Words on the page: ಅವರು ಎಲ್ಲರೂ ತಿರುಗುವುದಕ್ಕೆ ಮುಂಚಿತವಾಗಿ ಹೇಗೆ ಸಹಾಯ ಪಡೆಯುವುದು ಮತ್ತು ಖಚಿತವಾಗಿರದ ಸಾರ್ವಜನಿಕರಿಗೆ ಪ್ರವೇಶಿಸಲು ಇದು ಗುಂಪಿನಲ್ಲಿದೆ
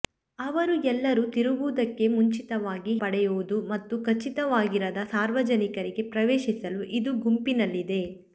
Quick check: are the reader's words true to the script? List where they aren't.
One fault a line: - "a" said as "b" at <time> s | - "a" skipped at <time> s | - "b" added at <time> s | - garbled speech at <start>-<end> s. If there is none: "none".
- "ಹೇಗೆ ಸಹಾಯ" skipped at 2.9 s